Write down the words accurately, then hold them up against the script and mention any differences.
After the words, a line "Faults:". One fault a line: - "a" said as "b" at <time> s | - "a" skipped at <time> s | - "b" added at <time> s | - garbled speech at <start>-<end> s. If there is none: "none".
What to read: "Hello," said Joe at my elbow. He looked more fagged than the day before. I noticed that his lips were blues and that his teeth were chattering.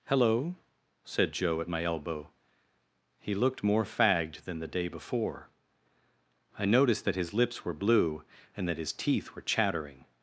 "Hello," said Joe at my elbow. He looked more fagged than the day before. I noticed that his lips were blue and that his teeth were chattering.
Faults:
- "blues" said as "blue" at 7.7 s